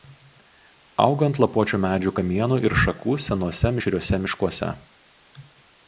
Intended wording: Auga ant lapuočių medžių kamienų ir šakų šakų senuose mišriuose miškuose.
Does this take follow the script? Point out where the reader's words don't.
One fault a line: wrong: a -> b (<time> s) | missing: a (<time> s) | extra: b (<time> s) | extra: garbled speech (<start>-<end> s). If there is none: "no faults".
missing: šakų (3.2 s)